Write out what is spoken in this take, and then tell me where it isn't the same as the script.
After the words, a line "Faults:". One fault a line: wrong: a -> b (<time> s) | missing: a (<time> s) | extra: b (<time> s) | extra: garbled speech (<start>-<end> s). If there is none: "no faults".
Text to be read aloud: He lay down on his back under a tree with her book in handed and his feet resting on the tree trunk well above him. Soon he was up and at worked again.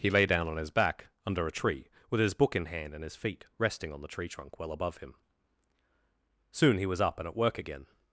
He lay down on his back under a tree with his book in hand and his feet resting on the tree trunk well above him. Soon he was up and at work again.
Faults:
wrong: her -> his (2.2 s)
wrong: handed -> hand (2.7 s)
wrong: worked -> work (7.3 s)